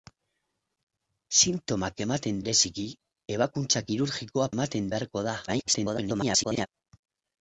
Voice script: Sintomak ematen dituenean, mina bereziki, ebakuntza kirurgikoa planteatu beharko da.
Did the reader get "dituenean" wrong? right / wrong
wrong